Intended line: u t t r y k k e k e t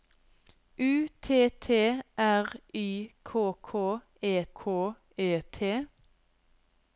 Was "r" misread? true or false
false